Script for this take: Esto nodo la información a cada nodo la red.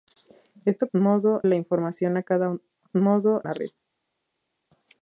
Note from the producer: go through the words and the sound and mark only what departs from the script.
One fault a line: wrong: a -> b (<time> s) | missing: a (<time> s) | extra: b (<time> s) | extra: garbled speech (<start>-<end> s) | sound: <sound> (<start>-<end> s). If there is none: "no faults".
no faults